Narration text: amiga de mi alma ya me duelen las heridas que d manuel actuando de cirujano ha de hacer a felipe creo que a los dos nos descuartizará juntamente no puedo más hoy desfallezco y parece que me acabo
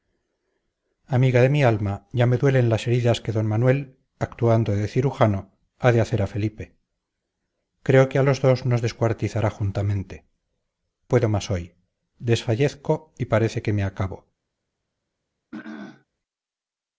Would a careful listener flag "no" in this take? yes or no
yes